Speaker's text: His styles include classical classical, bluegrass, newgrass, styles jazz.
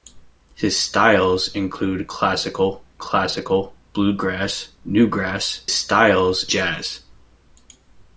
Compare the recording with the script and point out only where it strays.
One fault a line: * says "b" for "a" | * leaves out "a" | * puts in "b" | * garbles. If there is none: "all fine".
all fine